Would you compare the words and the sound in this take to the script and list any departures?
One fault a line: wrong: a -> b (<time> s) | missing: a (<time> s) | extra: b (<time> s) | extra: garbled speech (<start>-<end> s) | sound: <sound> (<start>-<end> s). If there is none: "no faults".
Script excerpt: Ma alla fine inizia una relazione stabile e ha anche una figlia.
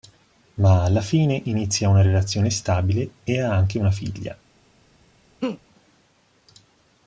sound: laugh (5.4-5.6 s)